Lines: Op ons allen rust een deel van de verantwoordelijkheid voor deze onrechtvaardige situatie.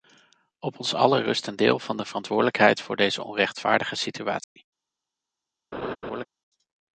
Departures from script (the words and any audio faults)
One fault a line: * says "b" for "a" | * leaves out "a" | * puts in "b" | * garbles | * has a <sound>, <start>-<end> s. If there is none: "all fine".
* has a dropout, 4.4-4.6 s
* has a laugh, 5.7-6.3 s